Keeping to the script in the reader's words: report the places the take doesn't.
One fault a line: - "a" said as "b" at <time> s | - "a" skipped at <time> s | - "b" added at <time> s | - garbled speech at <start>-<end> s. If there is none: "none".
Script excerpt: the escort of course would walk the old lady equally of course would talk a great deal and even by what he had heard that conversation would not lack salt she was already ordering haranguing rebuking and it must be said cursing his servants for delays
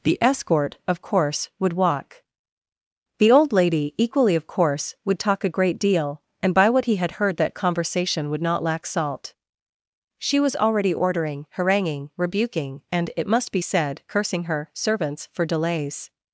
- "even" skipped at 6.5 s
- "his" said as "her" at 14.4 s